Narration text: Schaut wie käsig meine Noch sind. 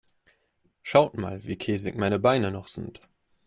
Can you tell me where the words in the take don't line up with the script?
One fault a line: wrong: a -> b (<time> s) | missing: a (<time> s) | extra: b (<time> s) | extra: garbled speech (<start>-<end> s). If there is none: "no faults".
extra: mal (1.1 s)
extra: Beine (2.2 s)